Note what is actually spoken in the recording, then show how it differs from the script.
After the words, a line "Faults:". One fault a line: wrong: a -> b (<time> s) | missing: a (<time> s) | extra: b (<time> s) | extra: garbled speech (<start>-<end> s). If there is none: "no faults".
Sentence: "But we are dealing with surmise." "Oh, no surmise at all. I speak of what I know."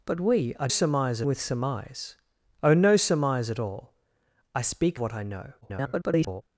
"But we are surmise with surmise." "Oh, no surmise at all. I speak what I know." [garbled]
Faults:
wrong: dealing -> surmise (0.7 s)
missing: of (5.0 s)
extra: garbled speech (5.6-6.4 s)